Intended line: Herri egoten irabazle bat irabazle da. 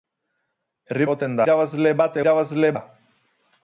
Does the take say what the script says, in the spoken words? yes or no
yes